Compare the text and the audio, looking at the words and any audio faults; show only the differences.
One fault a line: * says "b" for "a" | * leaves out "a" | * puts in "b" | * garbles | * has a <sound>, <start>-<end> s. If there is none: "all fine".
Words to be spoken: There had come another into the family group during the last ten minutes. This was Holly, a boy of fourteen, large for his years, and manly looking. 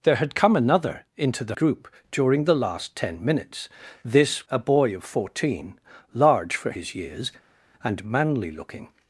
* leaves out "family"
* leaves out "was Holly"